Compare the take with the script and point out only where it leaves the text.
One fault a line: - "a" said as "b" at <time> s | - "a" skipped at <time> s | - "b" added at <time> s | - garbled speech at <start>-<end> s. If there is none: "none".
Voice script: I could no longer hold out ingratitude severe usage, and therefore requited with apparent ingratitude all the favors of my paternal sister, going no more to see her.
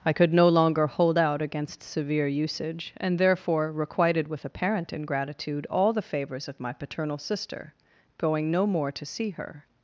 - "ingratitude" said as "against" at 1.4 s